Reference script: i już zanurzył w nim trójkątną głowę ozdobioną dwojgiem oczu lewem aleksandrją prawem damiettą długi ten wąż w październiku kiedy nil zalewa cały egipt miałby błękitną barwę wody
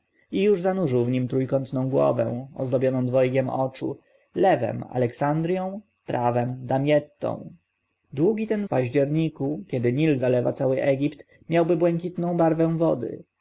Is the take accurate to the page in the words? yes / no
no